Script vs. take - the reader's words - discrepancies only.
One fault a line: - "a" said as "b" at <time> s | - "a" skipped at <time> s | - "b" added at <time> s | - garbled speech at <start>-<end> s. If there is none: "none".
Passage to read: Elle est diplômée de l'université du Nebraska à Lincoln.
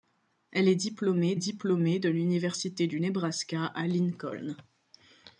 - "diplômée" added at 1.3 s